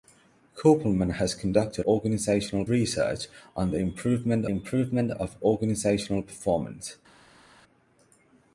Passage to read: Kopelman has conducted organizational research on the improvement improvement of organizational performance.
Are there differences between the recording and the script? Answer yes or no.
no